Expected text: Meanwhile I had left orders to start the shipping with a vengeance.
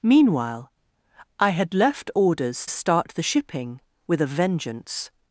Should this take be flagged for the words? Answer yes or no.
yes